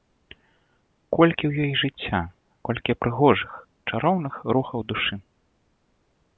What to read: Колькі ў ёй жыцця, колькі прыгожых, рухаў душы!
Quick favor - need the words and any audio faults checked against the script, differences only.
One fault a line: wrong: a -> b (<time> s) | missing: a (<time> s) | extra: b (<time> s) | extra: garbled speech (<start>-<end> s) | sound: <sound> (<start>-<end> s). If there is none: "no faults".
extra: чароўных (3.9 s)